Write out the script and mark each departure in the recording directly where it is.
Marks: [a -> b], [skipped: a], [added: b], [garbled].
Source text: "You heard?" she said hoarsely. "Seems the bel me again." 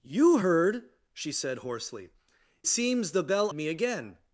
"You heard?" she said hoarsely. "Seems the bel me again."